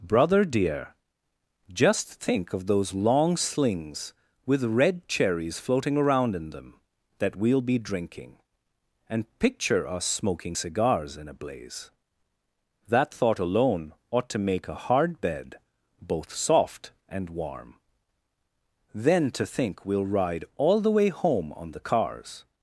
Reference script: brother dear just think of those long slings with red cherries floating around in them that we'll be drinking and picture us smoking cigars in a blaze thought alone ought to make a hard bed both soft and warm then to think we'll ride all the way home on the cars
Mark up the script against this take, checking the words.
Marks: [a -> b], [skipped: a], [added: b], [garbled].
brother dear just think of those long slings with red cherries floating around in them that we'll be drinking and picture us smoking cigars in a blaze [added: that] thought alone ought to make a hard bed both soft and warm then to think we'll ride all the way home on the cars